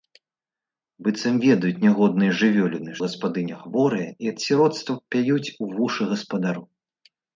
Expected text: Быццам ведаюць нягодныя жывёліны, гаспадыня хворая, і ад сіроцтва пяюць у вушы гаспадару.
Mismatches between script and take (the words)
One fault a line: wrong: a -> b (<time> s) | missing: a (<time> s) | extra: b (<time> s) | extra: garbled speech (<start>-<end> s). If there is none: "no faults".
no faults